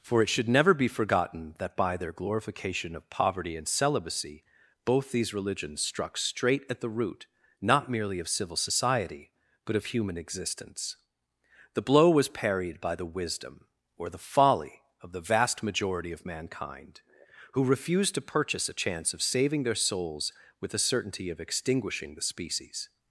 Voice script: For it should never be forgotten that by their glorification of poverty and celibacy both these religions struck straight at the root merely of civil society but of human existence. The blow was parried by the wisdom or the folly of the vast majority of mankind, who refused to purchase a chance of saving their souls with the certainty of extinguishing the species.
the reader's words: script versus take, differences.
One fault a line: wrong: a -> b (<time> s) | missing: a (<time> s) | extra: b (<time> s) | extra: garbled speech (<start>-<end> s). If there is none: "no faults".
extra: not (7.6 s)